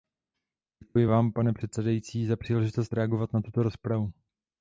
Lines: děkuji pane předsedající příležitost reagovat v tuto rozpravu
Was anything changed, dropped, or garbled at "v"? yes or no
yes